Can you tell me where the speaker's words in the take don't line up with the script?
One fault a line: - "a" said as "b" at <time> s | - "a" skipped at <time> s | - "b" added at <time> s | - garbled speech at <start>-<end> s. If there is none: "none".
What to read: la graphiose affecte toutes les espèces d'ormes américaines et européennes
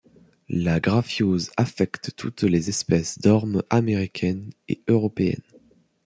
none